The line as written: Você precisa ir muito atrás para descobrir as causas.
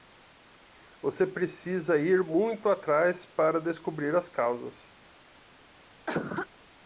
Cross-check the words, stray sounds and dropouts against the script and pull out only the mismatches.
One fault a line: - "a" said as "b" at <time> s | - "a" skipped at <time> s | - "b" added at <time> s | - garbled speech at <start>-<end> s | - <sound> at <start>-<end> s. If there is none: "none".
- cough at 6.1-6.5 s